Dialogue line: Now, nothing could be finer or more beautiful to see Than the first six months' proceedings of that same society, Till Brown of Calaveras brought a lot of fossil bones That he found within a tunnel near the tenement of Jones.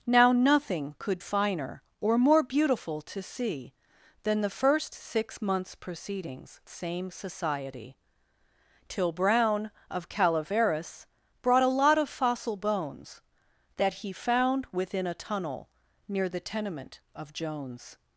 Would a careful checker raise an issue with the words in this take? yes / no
yes